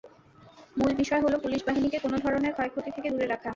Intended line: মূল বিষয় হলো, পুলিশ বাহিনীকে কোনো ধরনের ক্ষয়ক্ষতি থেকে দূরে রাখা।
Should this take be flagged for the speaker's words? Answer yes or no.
no